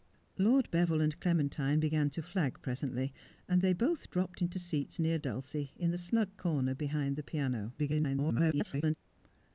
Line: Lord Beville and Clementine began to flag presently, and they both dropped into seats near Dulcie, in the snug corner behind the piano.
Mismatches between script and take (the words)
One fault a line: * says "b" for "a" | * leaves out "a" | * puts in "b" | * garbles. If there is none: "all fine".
* garbles